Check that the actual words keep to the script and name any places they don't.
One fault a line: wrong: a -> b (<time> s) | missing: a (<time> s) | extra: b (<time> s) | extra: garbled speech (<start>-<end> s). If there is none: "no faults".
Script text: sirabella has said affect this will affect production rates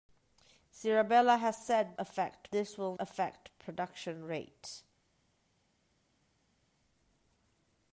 no faults